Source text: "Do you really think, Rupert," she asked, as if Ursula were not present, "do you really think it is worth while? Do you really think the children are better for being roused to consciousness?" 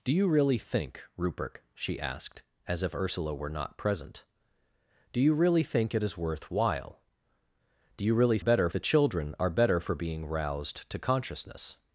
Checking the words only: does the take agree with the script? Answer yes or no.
no